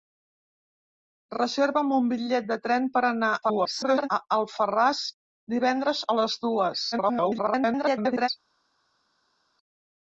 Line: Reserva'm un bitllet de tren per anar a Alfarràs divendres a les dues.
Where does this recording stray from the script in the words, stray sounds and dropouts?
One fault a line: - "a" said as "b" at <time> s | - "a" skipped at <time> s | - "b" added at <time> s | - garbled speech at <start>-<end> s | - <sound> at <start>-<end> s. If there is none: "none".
- garbled speech at 3.4-4.1 s
- garbled speech at 6.9-8.3 s